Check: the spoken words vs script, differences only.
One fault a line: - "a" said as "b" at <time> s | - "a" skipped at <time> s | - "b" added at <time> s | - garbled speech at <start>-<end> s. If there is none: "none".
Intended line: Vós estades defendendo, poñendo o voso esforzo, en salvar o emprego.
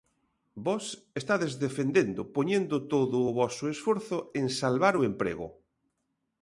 - "todo" added at 2.9 s